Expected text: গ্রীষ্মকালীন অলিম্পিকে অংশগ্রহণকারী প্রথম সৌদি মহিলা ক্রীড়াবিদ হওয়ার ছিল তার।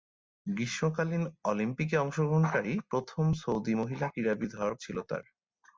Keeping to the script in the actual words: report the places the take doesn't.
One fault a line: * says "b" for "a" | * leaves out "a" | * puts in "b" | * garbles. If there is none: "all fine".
all fine